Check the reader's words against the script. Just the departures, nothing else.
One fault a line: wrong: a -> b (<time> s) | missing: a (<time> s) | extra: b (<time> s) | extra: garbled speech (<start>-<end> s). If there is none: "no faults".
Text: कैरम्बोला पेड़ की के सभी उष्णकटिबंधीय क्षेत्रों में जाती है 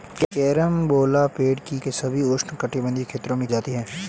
no faults